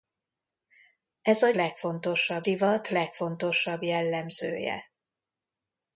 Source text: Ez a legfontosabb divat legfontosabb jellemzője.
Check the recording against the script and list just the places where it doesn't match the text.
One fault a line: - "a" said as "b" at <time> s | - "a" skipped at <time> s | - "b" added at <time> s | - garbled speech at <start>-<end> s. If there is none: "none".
none